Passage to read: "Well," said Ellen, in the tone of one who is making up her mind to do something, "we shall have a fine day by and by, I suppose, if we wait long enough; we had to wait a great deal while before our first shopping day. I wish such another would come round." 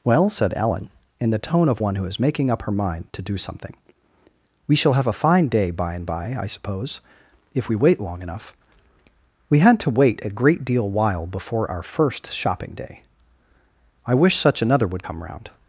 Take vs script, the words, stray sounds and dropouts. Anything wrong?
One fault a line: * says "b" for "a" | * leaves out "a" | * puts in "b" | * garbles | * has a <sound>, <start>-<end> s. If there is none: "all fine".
all fine